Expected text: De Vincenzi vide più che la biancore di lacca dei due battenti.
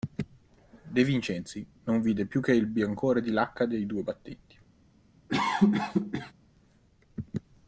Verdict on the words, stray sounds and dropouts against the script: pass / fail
fail